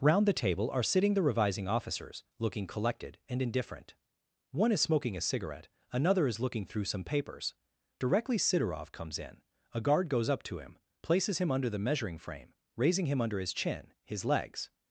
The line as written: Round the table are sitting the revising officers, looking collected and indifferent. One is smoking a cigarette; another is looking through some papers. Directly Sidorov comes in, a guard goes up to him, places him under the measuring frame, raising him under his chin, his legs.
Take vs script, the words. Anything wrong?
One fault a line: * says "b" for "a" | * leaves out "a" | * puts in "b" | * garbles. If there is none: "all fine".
all fine